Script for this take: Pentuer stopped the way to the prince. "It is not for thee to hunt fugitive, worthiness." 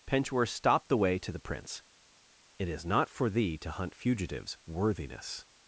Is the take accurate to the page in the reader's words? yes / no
no